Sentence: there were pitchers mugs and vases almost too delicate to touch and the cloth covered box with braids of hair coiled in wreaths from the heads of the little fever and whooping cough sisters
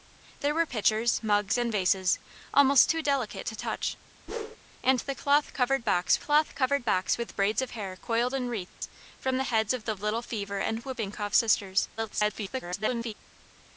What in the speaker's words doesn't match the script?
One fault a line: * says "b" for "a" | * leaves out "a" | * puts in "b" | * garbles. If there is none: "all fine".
* puts in "cloth covered box"
* garbles